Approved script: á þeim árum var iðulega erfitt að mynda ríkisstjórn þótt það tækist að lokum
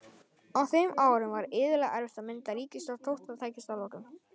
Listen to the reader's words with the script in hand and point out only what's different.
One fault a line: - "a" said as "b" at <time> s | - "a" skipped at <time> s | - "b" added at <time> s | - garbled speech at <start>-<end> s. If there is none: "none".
none